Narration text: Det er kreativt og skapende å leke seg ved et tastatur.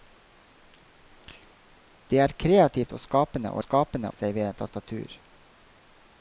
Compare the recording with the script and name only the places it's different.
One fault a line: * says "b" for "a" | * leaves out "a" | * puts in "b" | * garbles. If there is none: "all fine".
* says "skapende" for "leke"